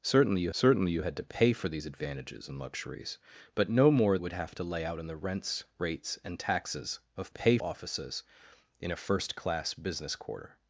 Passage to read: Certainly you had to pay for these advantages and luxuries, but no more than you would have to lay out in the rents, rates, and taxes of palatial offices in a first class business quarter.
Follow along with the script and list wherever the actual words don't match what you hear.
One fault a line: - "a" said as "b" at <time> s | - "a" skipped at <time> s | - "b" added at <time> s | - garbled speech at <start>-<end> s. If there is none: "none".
- "certainly you" added at 0.5 s
- "than you" skipped at 4.2 s
- "palatial" said as "pay" at 7.3 s